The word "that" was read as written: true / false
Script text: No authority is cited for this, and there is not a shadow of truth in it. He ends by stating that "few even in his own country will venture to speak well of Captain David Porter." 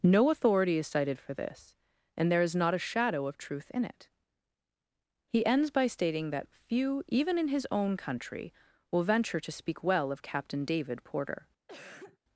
true